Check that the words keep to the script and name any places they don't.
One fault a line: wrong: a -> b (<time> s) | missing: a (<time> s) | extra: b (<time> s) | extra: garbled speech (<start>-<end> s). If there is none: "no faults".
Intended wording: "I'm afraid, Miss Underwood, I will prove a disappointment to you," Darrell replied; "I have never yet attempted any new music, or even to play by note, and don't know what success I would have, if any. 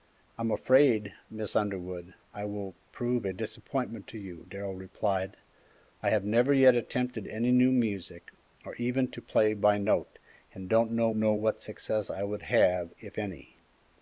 extra: know (11.1 s)